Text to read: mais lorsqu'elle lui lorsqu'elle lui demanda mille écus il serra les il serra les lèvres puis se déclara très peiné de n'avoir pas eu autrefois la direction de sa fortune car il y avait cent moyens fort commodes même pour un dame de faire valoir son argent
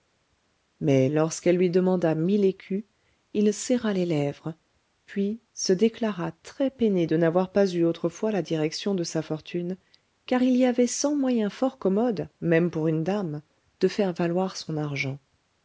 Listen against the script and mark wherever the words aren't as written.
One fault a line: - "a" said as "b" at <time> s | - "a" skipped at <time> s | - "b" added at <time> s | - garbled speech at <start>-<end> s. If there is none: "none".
- "lorsqu'elle lui" skipped at 1.7 s
- "il serra les" skipped at 4.1 s
- "un" said as "une" at 12.9 s